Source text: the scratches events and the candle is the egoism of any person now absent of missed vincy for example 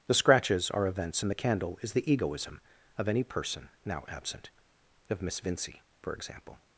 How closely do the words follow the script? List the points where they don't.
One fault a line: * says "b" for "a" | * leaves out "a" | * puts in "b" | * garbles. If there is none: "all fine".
* puts in "are"
* says "miss" for "missed"